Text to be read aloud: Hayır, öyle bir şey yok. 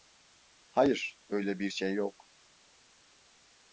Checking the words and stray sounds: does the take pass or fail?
pass